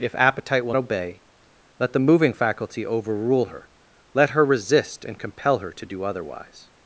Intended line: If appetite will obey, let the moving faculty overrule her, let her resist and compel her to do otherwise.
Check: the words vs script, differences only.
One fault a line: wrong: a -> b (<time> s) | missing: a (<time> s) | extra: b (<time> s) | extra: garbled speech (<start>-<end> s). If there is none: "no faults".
no faults